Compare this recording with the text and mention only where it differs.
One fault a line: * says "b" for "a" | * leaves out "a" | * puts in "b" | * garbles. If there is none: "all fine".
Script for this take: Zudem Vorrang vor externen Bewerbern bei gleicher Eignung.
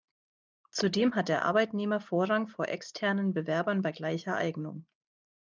* puts in "hat der Arbeitnehmer"